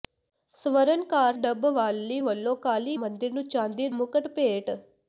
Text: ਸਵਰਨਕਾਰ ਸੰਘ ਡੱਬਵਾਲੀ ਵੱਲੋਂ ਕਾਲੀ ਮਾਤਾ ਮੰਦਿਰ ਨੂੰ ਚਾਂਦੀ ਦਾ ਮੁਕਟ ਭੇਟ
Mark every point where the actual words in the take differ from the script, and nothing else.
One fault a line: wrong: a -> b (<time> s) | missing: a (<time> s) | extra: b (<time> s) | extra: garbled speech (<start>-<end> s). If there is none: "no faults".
missing: ਸੰਘ (1.4 s)
missing: ਮਾਤਾ (3.0 s)
missing: ਦਾ (3.9 s)